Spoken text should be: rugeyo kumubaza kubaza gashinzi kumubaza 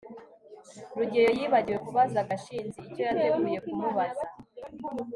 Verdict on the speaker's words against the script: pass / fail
fail